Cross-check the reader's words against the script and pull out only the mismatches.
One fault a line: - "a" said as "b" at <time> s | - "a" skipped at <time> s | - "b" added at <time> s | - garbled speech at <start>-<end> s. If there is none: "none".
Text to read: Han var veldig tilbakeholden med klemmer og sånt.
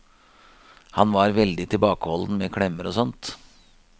none